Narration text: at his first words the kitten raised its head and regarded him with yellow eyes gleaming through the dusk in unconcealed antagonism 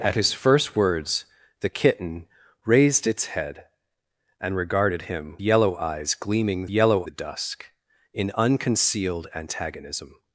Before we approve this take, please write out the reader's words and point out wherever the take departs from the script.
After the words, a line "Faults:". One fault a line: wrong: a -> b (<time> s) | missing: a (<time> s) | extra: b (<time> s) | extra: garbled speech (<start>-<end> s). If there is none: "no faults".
at his first words the kitten raised its head and regarded him yellow eyes gleaming yellow the dusk in unconcealed antagonism
Faults:
missing: with (5.4 s)
wrong: through -> yellow (6.7 s)